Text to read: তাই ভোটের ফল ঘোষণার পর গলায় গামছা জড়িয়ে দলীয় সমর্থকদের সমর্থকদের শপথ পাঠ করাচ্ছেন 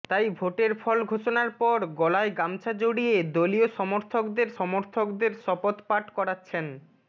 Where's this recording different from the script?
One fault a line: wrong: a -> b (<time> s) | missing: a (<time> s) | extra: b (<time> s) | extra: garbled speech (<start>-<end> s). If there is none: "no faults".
no faults